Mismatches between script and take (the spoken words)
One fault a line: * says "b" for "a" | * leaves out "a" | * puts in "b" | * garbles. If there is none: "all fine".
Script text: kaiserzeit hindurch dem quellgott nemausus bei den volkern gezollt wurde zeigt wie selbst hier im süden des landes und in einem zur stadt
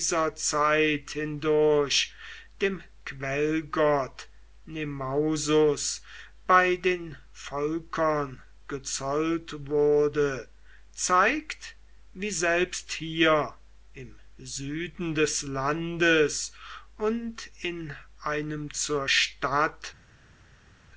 all fine